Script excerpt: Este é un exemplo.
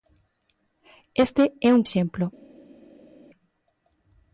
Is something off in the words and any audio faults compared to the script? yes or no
no